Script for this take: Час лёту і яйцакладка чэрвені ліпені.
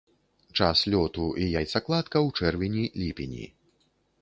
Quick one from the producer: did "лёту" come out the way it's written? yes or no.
yes